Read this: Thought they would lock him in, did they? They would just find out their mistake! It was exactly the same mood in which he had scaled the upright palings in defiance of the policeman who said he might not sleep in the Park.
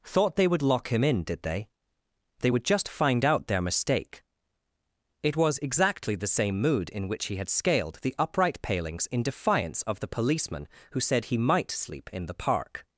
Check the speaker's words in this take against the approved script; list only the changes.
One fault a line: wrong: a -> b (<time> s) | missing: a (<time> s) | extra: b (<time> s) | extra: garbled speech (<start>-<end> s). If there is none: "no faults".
missing: not (11.7 s)